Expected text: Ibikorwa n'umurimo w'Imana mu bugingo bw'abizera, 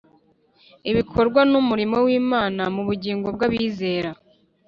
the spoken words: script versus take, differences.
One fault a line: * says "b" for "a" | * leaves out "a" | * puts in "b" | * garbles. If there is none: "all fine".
all fine